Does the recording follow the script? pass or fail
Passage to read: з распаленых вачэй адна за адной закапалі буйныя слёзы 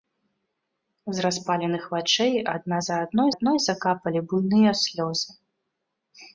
fail